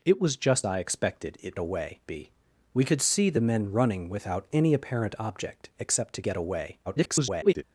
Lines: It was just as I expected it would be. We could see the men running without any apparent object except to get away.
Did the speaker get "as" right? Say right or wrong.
wrong